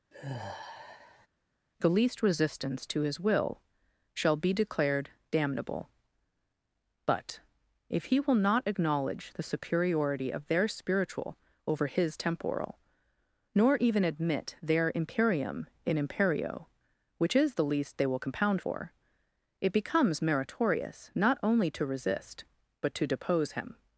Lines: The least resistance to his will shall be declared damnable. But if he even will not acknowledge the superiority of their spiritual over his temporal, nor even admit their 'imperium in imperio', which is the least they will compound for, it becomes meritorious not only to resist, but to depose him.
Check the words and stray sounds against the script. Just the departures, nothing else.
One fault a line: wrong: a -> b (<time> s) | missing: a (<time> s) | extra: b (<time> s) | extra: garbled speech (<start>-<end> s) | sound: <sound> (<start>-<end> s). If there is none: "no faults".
sound: sigh (0.1-1.3 s)
missing: even (8.2 s)